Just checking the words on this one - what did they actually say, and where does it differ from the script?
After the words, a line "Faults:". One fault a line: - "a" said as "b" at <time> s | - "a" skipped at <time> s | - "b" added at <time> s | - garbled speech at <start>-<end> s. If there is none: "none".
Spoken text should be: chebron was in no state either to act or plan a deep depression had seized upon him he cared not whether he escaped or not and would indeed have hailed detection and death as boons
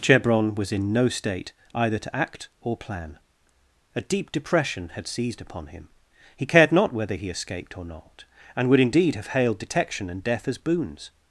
chebron was in no state either to act or plan a deep depression had seized upon him he cared not whether he escaped or not and would indeed have hailed detection and death as boons
Faults:
none